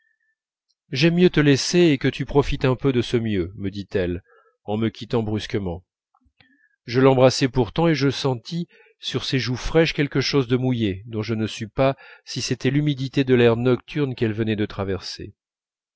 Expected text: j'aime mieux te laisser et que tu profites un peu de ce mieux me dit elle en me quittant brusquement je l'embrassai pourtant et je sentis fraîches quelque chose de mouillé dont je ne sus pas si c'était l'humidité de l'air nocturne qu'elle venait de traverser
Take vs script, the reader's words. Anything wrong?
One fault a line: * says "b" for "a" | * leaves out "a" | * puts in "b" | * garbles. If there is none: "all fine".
* puts in "sur ses joues"